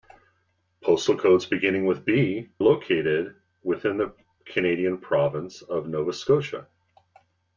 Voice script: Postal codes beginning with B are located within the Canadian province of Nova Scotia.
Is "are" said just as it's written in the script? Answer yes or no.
no